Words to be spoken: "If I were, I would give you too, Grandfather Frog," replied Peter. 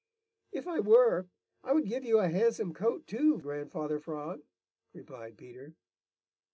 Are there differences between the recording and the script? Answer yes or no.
yes